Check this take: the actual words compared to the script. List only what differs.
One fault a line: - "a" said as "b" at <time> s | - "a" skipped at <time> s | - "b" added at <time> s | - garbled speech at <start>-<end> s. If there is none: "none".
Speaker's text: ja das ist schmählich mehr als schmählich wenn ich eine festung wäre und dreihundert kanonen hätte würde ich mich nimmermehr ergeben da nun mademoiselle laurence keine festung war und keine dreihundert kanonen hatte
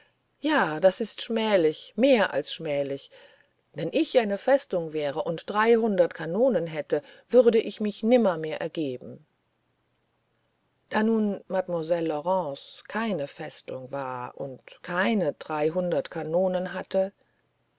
none